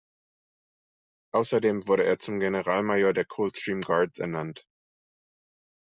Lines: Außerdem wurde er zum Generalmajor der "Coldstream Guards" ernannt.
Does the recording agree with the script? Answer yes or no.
yes